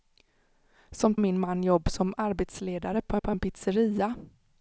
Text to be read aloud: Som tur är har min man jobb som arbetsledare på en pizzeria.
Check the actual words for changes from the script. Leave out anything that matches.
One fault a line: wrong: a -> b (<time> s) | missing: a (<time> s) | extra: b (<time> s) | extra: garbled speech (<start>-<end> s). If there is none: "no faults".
missing: tur är har (1.1 s)
extra: på (3.2 s)